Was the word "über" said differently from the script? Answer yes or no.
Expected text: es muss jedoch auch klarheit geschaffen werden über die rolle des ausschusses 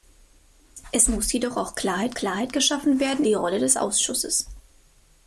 yes